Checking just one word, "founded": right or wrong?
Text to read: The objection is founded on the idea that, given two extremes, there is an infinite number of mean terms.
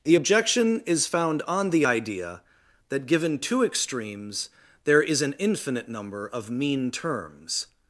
wrong